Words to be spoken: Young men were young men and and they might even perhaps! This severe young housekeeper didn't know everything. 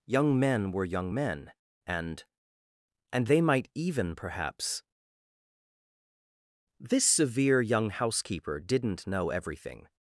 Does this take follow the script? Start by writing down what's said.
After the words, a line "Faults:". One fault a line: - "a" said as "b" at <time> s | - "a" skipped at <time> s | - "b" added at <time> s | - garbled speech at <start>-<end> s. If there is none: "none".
Young men were young men and and they might even perhaps! This severe young housekeeper didn't know everything.
Faults:
none